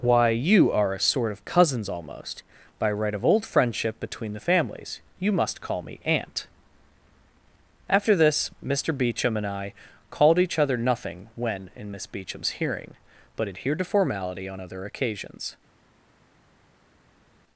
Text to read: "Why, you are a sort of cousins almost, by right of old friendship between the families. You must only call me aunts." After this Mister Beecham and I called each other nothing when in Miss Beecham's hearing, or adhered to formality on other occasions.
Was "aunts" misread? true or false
true